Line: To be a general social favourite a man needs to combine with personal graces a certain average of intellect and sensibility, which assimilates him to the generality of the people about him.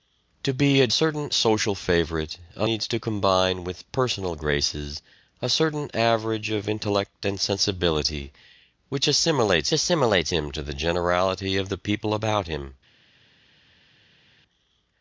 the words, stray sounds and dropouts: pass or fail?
fail